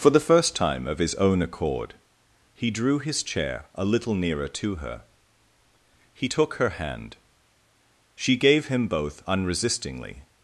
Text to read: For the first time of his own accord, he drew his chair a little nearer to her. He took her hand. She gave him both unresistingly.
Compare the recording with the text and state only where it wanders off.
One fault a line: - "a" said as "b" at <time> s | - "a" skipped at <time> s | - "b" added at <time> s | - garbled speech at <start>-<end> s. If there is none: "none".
none